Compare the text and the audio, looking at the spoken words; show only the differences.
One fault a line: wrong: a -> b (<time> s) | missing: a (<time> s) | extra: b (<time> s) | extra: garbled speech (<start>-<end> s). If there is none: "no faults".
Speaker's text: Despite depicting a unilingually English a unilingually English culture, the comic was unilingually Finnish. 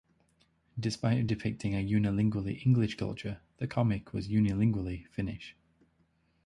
missing: a unilingually English (3.0 s)